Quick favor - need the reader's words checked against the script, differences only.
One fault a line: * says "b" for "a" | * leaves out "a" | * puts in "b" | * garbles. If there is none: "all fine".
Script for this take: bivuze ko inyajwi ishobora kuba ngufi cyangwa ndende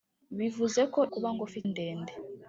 * leaves out "inyajwi ishobora"
* leaves out "cyangwa"